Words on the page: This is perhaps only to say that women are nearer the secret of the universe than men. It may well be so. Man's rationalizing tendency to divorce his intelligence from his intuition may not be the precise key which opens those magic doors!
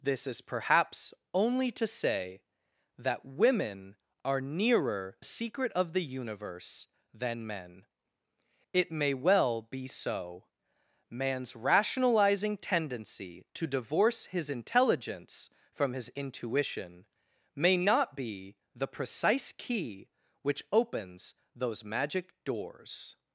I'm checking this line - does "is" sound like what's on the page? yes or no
yes